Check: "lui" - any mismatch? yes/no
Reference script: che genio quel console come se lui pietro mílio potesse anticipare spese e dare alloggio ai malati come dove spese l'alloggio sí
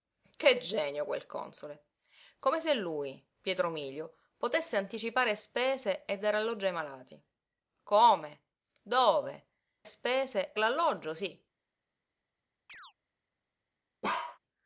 no